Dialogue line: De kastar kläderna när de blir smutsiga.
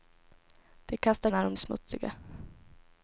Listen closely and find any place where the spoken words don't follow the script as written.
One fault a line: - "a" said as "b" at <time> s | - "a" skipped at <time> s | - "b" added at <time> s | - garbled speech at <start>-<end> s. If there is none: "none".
- "kläderna" skipped at 1.3 s
- "blir" skipped at 1.6 s